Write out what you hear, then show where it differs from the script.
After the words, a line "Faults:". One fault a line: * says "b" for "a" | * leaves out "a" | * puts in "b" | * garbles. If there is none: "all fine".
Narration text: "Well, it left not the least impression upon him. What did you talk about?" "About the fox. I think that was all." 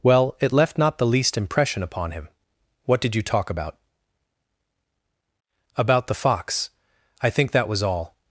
"Well, it left not the least impression upon him. What did you talk about?" "About the fox. I think that was all."
Faults:
all fine